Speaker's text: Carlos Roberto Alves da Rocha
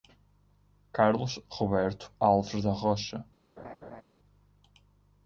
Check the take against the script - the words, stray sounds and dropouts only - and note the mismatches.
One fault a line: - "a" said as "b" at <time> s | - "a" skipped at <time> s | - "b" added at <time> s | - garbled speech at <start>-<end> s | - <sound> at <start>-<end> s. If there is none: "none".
- laugh at 3.6-4.0 s